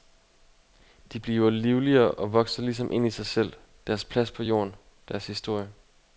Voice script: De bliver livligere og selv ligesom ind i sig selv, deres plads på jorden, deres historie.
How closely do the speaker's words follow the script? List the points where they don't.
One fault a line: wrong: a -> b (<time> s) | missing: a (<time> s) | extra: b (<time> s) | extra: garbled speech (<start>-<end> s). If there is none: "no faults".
wrong: selv -> vokser (2.3 s)